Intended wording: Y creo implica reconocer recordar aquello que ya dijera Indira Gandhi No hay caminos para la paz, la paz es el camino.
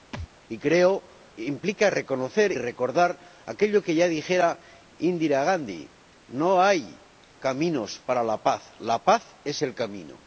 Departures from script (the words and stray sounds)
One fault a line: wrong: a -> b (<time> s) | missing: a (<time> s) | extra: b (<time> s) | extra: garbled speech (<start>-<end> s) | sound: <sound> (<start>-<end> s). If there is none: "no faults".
sound: thud (0.1-0.3 s)